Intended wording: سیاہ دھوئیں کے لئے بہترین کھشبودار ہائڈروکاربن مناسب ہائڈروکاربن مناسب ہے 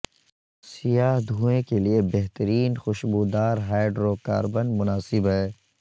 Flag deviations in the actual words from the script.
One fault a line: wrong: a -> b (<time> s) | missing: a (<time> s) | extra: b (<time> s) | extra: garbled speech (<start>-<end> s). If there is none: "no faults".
missing: ہائڈروکاربن مناسب (5.3 s)